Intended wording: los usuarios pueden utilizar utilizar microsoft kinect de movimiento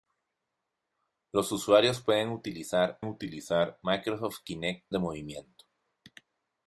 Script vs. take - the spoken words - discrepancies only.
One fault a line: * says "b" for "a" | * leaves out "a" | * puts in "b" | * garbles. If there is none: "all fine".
all fine